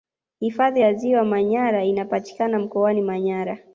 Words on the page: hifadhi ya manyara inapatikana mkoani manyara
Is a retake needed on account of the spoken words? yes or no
yes